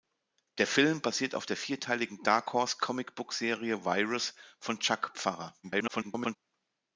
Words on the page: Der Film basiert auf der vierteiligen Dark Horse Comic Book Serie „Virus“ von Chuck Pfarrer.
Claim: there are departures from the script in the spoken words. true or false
true